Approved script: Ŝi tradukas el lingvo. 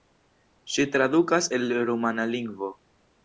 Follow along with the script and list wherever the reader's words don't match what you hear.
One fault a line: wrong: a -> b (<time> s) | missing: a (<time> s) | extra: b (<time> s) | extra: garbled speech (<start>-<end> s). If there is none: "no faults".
extra: rumana (1.9 s)